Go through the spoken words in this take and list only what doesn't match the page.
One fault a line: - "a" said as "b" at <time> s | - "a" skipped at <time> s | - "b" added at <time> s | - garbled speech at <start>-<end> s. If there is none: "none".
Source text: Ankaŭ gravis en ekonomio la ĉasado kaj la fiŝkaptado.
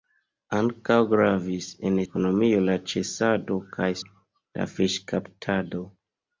none